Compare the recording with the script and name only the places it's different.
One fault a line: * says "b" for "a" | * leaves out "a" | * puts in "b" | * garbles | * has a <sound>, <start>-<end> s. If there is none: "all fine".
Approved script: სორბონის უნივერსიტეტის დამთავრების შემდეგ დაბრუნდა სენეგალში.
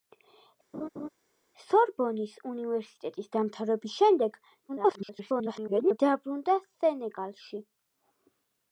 * has a laugh, 0.7-1.1 s
* garbles